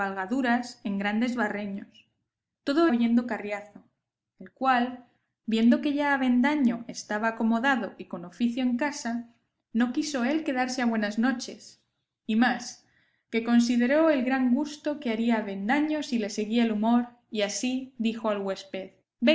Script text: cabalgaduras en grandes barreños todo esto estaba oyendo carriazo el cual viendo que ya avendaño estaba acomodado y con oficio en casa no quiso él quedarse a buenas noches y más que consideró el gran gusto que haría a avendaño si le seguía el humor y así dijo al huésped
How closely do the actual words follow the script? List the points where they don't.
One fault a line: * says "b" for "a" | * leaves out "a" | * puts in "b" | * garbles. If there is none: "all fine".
* leaves out "esto estaba"